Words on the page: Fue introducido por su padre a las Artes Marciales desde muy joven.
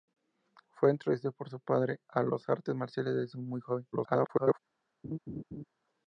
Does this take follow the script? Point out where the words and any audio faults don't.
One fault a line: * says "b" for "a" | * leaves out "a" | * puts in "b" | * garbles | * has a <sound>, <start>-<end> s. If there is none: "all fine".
* garbles
* has a laugh, 5.0-5.6 s